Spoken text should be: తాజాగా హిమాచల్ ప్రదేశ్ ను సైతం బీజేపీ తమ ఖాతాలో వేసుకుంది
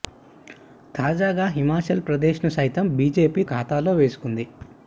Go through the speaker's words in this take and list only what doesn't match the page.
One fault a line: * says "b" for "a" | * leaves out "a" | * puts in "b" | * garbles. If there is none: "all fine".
* leaves out "తమ"